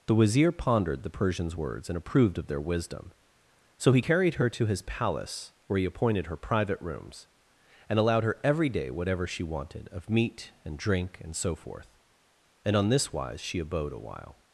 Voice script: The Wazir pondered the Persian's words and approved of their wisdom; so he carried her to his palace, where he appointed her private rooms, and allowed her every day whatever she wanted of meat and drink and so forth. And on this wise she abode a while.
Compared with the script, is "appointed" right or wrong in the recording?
right